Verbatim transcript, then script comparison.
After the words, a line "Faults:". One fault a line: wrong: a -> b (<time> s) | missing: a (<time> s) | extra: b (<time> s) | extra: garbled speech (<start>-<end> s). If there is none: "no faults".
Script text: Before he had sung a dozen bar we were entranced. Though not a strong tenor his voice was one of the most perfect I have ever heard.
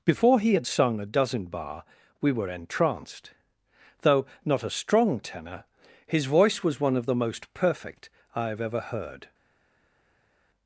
Before he had sung a dozen bar we were entranced. Though not a strong tenor his voice was one of the most perfect I have ever heard.
Faults:
no faults